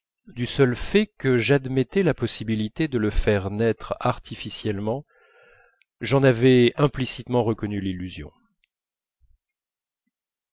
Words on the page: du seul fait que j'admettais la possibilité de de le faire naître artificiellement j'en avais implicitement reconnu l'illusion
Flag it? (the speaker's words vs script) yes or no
yes